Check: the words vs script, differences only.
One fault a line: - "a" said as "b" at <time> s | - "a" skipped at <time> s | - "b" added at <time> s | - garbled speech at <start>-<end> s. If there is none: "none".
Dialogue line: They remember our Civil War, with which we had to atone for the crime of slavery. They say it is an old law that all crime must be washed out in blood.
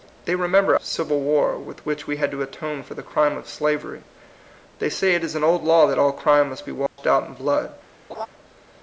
- "our" skipped at 0.8 s